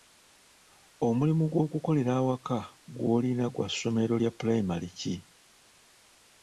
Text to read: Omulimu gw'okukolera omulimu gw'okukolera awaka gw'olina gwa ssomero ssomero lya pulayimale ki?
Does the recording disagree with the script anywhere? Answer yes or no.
yes